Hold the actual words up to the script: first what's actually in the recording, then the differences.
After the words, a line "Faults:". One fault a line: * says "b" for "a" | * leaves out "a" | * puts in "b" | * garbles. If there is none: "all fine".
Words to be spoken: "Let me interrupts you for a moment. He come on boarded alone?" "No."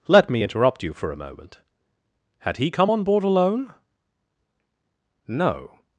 "Let me interrupt you for a moment. Had he come on board alone?" "No."
Faults:
* says "interrupt" for "interrupts"
* puts in "Had"
* says "board" for "boarded"